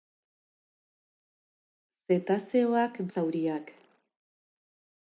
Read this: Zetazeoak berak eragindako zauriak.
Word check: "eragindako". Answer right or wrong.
wrong